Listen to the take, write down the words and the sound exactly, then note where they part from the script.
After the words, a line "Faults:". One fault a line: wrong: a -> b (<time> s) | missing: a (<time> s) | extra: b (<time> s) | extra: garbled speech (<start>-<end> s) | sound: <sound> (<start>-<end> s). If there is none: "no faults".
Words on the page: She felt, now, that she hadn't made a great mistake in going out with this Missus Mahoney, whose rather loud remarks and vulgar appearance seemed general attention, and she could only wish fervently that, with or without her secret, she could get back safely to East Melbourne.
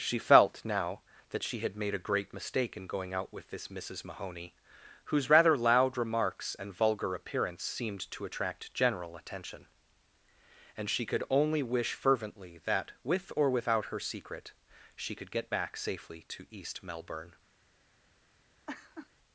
She felt, now, that she had made a great mistake in going out with this Missus Mahoney, whose rather loud remarks and vulgar appearance seemed to attract general attention, and she could only wish fervently that, with or without her secret, she could get back safely to East Melbourne.
Faults:
wrong: hadn't -> had (1.6 s)
extra: to attract (8.1 s)
sound: laugh (18.7-19.1 s)